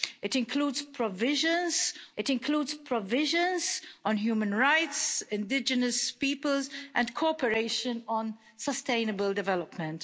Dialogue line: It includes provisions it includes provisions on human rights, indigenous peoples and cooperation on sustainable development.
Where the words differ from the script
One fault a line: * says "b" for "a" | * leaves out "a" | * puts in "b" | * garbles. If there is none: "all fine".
all fine